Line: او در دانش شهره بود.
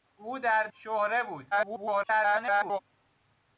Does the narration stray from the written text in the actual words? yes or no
yes